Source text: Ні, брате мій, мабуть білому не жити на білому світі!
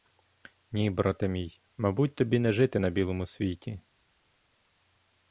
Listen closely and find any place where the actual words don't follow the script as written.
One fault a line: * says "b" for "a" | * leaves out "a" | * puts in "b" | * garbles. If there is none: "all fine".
* says "тобі" for "білому"